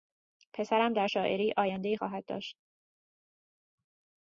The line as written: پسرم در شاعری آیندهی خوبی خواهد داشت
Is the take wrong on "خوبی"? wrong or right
wrong